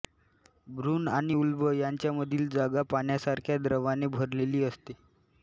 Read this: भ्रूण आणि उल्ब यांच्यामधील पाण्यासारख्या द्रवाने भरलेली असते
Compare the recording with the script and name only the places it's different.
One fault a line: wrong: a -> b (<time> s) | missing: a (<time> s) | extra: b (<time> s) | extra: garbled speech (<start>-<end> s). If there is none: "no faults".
extra: जागा (2.5 s)